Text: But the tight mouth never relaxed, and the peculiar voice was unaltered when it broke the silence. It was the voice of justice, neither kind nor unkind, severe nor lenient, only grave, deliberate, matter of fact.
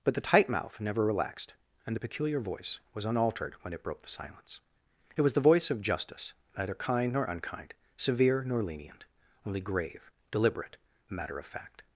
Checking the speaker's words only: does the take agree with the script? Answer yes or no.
yes